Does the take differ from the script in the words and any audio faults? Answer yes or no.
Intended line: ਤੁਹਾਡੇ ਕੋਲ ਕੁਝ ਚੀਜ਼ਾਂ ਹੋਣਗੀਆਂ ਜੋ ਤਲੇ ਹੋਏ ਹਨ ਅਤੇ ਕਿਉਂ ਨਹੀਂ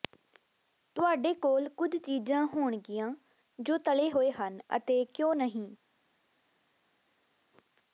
no